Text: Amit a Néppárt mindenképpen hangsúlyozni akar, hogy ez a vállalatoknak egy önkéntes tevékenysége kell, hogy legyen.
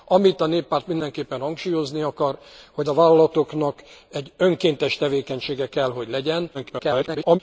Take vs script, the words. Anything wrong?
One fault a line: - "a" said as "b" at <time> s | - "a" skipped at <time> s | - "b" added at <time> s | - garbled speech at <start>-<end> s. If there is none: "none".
- "ez" skipped at 2.9 s
- garbled speech at 6.5-7.4 s